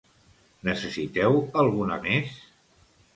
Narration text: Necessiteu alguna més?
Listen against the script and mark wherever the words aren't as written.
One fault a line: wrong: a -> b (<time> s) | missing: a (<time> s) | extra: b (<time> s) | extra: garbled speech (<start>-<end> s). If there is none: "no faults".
no faults